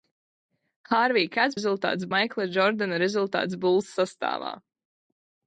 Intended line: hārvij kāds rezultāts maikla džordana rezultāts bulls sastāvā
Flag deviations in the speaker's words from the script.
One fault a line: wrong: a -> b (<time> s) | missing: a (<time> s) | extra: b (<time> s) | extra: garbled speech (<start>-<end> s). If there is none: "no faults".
no faults